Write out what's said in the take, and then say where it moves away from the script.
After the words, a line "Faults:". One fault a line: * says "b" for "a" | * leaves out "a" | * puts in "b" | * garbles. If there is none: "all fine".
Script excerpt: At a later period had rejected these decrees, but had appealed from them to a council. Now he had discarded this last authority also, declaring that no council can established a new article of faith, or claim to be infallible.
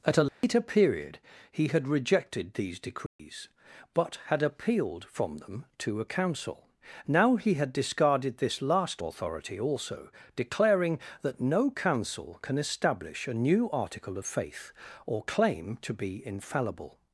At a later period he had rejected these decrees, but had appealed from them to a council. Now he had discarded this last authority also, declaring that no council can establish a new article of faith, or claim to be infallible.
Faults:
* puts in "he"
* says "establish" for "established"